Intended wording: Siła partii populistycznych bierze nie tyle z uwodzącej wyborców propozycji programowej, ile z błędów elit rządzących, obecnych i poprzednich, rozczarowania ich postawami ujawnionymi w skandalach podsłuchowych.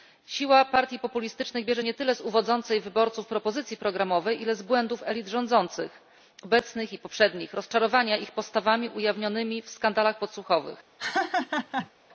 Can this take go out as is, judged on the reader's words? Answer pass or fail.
pass